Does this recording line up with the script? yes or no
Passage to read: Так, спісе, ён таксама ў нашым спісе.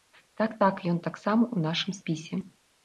no